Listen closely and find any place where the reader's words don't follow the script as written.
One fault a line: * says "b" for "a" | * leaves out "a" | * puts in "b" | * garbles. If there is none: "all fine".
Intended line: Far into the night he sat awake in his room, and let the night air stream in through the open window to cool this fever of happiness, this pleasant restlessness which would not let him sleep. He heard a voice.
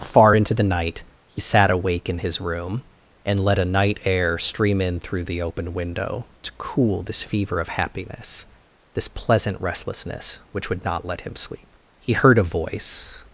* says "a" for "the"